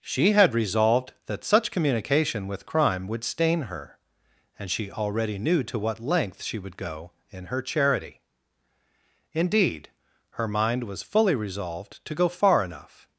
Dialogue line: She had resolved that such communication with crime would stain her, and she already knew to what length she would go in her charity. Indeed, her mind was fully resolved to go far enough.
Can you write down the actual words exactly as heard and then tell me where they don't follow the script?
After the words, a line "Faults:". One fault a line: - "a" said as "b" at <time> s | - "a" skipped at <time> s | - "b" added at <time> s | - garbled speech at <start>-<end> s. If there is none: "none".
She had resolved that such communication with crime would stain her, and she already knew to what length she would go in her charity. Indeed, her mind was fully resolved to go far enough.
Faults:
none